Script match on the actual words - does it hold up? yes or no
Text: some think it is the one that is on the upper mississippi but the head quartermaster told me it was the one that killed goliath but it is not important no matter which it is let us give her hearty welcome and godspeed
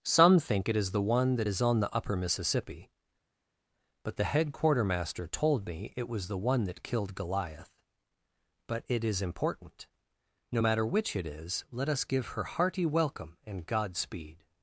no